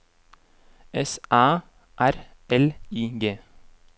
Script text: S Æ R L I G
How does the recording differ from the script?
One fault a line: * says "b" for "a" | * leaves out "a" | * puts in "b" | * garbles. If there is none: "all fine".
all fine